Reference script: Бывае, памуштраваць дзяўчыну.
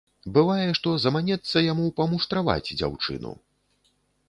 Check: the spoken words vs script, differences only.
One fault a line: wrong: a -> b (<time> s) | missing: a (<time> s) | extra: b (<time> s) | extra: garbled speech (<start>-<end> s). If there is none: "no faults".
extra: што заманецца яму (0.8 s)